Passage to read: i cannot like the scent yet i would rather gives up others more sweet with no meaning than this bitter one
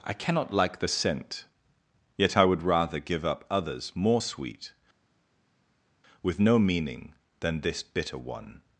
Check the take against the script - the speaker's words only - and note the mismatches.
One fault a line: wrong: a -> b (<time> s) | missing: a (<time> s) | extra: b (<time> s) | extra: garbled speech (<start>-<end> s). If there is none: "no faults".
wrong: gives -> give (3.0 s)